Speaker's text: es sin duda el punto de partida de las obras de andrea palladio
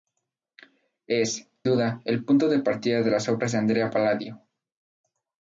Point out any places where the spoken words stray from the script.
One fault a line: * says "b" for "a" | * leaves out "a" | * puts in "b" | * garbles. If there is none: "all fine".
* leaves out "sin"